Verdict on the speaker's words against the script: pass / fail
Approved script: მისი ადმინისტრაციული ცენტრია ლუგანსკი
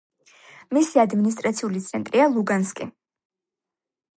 pass